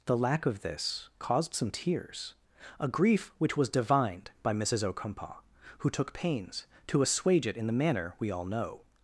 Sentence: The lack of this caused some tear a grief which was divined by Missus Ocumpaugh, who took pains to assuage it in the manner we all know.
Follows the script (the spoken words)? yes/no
no